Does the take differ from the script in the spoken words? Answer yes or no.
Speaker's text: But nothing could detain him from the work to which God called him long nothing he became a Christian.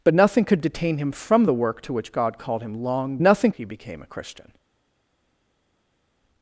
no